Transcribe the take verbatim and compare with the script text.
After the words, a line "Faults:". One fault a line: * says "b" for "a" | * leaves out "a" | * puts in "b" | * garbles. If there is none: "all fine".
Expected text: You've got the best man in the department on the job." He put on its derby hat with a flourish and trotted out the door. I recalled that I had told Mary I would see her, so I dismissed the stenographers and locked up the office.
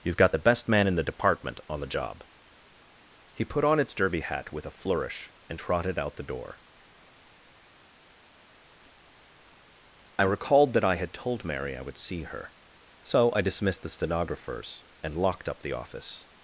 You've got the best man in the department on the job." He put on its derby hat with a flourish and trotted out the door. I recalled that I had told Mary I would see her, so I dismissed the stenographers and locked up the office.
Faults:
all fine